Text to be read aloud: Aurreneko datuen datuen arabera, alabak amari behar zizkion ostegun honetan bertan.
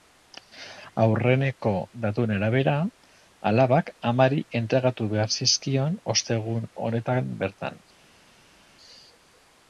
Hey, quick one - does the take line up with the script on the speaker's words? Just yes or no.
no